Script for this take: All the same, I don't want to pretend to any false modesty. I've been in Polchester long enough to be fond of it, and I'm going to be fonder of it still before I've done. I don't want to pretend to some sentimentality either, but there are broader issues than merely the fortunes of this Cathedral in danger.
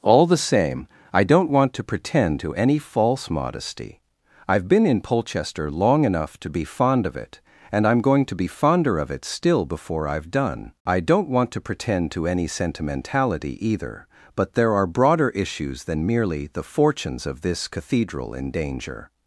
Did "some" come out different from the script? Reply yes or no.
yes